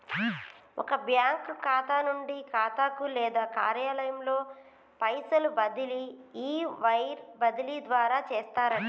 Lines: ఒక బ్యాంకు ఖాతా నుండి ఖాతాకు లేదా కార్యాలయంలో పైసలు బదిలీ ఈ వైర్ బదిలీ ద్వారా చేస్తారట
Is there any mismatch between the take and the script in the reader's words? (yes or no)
no